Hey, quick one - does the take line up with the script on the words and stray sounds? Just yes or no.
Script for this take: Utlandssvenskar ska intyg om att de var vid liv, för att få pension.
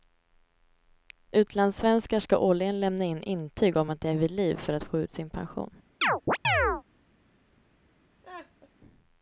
no